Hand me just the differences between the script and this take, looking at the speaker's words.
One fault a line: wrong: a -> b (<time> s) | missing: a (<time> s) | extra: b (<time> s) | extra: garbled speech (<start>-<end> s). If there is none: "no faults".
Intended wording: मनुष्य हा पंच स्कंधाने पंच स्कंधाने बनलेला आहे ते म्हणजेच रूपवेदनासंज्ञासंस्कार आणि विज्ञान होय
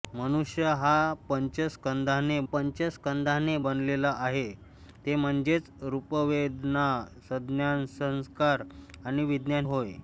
no faults